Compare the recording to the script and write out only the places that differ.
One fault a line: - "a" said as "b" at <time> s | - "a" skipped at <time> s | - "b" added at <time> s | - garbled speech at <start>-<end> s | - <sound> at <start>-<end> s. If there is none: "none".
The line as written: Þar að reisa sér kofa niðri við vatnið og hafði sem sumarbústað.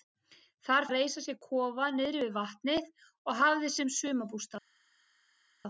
none